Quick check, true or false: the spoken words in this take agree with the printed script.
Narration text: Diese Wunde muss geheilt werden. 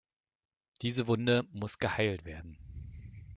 true